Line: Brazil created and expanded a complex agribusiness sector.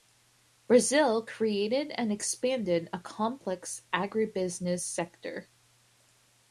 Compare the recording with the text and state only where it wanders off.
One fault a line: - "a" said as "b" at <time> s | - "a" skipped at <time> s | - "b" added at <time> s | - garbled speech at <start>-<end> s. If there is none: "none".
none